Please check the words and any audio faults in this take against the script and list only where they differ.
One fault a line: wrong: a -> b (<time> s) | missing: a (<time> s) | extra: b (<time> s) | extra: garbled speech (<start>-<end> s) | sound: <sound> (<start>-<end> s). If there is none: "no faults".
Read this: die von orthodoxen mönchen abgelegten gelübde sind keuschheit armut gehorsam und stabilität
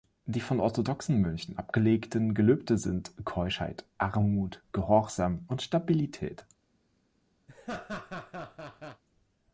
sound: laugh (7.5-9.0 s)